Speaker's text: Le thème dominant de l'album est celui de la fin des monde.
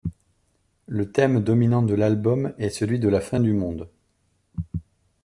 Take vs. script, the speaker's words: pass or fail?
fail